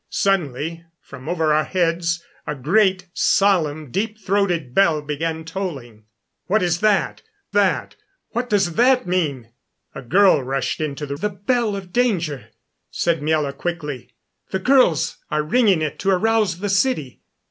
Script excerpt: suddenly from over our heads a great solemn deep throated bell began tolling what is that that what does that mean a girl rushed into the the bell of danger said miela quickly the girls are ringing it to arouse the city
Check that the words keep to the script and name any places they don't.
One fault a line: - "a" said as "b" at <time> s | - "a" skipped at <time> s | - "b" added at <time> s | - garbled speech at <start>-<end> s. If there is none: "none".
none